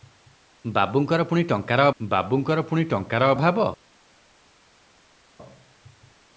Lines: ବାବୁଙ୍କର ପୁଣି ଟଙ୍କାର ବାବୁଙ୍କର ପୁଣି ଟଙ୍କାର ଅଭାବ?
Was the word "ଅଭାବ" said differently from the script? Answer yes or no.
no